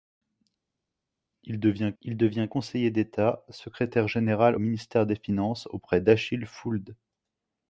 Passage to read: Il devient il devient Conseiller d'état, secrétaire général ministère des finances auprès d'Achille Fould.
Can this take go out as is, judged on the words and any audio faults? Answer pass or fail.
pass